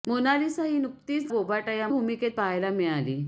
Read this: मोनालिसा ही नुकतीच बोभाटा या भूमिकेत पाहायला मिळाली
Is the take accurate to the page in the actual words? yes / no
yes